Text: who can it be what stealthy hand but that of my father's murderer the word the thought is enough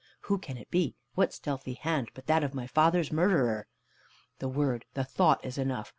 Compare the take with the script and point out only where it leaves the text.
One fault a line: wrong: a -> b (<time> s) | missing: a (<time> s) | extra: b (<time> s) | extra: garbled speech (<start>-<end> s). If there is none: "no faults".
no faults